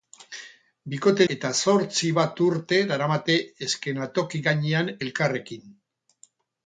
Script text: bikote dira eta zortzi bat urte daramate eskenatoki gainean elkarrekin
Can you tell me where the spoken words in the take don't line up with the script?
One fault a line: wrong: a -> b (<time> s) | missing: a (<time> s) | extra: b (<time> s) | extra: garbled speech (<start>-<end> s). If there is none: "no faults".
missing: dira (1.3 s)